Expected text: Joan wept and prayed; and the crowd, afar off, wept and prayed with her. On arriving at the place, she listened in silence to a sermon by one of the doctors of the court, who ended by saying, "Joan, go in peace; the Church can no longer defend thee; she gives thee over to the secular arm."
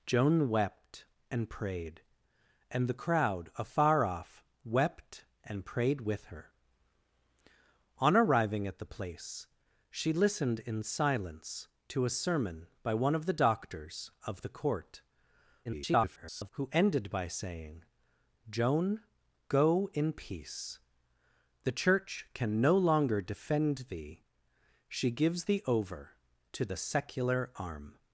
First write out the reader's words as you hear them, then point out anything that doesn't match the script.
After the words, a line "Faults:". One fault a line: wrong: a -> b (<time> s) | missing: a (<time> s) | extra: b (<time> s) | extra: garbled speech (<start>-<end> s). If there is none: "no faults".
Joan wept and prayed; and the crowd, afar off, wept and prayed with her. On arriving at the place, she listened in silence to a sermon by one of the doctors of the court, [garbled] who ended by saying, "Joan, go in peace; the Church can no longer defend thee; she gives thee over to the secular arm."
Faults:
extra: garbled speech (15.6-16.5 s)